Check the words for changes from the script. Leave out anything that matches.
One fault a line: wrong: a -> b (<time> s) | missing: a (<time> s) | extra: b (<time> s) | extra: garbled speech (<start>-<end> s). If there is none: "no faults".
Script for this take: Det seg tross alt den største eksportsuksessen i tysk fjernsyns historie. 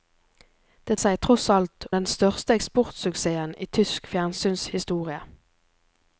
no faults